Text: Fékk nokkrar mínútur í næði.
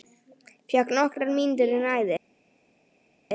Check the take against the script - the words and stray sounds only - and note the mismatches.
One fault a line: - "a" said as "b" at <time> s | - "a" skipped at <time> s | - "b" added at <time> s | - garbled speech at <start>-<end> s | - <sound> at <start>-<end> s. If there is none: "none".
none